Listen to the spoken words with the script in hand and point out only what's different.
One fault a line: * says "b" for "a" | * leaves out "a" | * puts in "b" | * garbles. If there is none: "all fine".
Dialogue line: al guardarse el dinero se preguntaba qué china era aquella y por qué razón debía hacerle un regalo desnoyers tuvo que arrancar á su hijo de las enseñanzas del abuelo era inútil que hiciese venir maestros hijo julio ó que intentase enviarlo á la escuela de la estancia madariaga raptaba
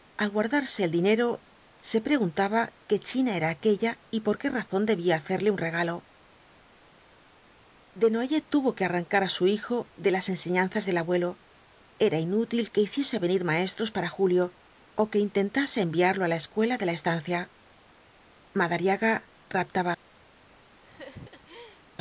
* says "para" for "hijo"